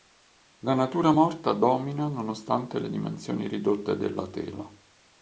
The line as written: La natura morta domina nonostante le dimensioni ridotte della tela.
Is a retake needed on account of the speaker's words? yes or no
no